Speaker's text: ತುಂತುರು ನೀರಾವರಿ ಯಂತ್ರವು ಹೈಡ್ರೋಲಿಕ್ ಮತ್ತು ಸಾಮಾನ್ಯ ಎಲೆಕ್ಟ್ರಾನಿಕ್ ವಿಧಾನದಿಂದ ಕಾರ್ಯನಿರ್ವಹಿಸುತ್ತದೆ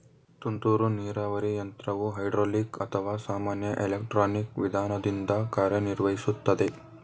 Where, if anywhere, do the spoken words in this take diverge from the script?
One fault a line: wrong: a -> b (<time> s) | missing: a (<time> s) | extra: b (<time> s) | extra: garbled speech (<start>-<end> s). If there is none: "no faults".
wrong: ಮತ್ತು -> ಅಥವಾ (2.8 s)